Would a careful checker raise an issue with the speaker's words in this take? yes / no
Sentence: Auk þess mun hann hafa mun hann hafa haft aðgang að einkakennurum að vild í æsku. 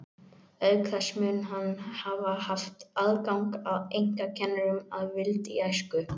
yes